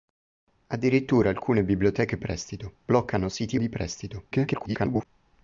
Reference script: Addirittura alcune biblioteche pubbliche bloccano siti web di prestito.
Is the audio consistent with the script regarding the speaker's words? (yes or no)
no